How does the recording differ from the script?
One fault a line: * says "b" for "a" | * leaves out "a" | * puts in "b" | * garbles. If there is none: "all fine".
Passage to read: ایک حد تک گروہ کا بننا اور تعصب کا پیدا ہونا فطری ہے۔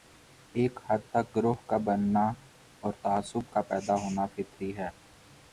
all fine